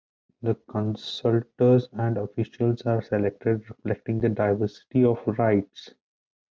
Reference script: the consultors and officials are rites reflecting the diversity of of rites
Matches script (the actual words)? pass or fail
fail